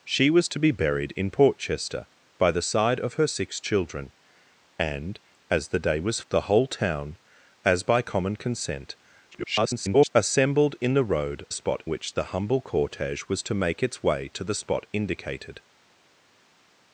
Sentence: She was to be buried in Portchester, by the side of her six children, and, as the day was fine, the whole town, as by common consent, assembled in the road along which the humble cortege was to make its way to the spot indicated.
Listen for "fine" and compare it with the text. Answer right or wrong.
wrong